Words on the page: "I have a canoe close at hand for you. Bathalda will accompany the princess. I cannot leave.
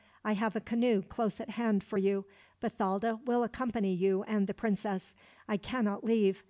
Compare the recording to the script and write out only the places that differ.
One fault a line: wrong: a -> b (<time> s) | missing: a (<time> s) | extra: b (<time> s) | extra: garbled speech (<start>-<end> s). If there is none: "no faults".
extra: you and (3.9 s)